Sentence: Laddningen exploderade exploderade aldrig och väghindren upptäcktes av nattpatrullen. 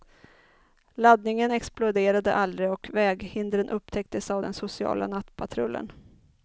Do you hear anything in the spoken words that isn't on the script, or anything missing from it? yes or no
yes